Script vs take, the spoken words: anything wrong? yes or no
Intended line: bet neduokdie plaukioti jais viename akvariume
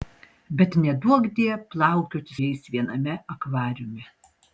no